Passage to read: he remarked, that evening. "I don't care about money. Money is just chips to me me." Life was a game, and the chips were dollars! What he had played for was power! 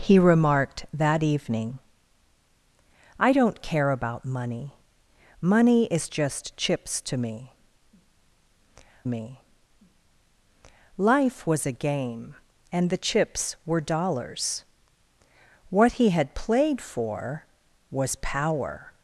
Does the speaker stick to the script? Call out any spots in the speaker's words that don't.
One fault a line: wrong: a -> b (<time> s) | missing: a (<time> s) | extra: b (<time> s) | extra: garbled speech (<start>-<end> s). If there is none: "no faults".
no faults